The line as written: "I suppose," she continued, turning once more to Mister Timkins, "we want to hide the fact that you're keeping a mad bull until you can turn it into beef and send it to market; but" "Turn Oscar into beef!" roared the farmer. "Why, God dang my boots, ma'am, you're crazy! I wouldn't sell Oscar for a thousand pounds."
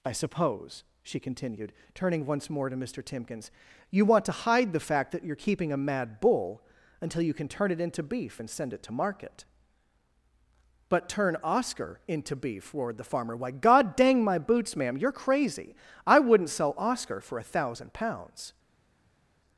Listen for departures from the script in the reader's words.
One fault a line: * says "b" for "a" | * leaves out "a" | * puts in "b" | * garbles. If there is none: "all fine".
* says "you" for "we"